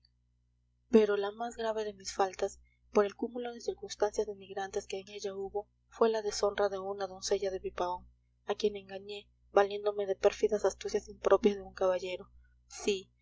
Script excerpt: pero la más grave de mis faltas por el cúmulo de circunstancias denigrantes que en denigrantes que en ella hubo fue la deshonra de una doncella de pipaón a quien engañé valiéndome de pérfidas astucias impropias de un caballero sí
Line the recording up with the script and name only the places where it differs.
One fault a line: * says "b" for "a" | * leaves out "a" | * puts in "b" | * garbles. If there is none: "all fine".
* leaves out "denigrantes que en"